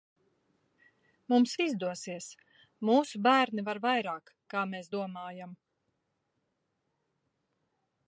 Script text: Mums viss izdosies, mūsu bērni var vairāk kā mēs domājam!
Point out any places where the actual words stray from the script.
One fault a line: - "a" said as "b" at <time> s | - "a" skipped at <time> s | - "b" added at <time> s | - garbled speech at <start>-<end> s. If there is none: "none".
- "viss" skipped at 1.5 s